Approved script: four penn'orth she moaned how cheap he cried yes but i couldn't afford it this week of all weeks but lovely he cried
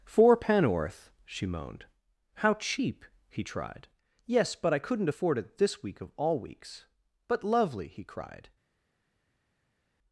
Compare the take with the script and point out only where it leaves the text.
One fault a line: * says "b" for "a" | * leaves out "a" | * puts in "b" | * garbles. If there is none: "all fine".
* says "tried" for "cried"